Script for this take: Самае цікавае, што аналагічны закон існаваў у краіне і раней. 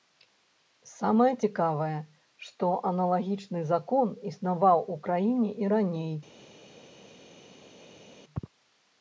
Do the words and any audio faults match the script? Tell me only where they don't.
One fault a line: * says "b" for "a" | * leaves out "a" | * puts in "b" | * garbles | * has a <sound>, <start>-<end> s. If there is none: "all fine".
all fine